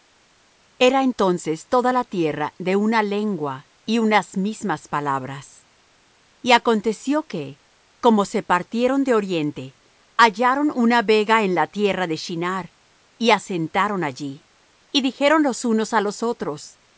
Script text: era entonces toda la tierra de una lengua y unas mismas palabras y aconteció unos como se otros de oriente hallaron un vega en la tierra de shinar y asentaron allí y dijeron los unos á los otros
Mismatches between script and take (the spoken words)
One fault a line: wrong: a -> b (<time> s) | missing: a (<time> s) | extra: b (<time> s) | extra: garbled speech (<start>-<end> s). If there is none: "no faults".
wrong: unos -> que (7.3 s)
wrong: otros -> partieron (8.4 s)
wrong: un -> una (10.7 s)